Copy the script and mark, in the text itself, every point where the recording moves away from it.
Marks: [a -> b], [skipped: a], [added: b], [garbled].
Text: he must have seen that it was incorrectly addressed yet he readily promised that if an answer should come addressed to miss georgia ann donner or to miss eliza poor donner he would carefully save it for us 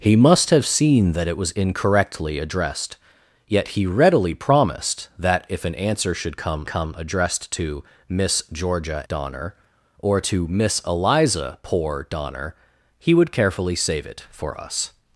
he must have seen that it was incorrectly addressed yet he readily promised that if an answer should come [added: come] addressed to miss georgia [skipped: ann] donner or to miss eliza poor donner he would carefully save it for us